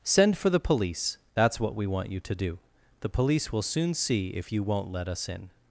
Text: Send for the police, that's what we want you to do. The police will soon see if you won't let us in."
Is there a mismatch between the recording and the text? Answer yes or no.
no